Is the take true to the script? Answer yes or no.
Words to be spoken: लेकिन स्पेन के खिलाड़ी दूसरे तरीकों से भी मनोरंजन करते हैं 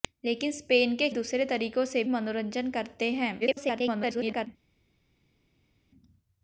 no